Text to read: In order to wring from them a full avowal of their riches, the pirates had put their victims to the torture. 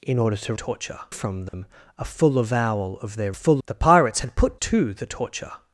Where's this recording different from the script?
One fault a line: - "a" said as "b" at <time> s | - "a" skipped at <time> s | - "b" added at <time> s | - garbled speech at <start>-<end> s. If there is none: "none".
- "wring" said as "torture" at 0.5 s
- "riches" said as "full" at 3.3 s
- "their victims" skipped at 4.6 s